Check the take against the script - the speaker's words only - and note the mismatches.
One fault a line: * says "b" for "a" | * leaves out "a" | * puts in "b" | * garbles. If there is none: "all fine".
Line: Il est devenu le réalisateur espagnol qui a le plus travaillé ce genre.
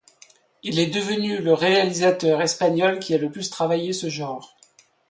all fine